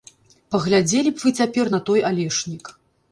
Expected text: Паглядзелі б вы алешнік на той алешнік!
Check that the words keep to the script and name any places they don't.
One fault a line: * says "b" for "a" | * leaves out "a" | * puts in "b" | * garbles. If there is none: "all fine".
* says "цяпер" for "алешнік"